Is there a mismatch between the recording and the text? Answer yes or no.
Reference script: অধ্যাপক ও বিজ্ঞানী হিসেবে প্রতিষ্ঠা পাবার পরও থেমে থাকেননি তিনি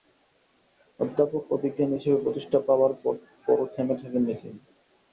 no